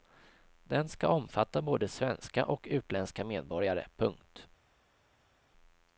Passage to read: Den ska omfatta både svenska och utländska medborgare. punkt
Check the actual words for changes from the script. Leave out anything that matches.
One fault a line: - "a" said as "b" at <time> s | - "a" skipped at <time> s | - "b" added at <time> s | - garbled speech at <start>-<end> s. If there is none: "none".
none